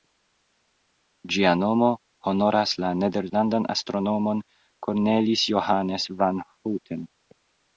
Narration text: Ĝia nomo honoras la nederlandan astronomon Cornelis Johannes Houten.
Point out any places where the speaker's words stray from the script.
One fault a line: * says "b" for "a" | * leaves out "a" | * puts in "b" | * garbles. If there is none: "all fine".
* puts in "van"